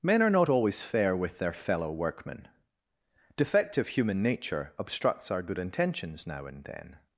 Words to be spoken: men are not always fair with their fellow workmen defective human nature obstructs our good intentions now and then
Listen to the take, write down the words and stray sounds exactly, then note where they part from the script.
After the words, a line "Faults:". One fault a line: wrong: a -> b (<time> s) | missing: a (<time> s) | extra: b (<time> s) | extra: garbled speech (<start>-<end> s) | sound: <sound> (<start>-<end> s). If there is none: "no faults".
men are not always fair with their fellow workmen defective human nature obstructs our good intentions now and then
Faults:
no faults